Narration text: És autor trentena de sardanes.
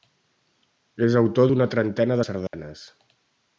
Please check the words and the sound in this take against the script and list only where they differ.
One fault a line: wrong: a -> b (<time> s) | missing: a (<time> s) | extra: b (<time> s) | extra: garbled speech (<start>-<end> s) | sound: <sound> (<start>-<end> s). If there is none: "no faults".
extra: d'una (1.5 s)
sound: dropout (2.5-2.5 s)